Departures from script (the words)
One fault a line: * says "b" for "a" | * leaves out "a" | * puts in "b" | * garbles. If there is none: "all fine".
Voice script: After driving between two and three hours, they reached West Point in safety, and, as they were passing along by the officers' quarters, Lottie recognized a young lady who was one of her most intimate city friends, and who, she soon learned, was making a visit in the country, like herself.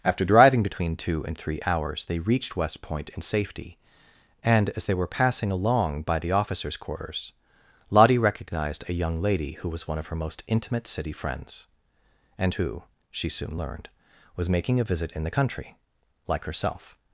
all fine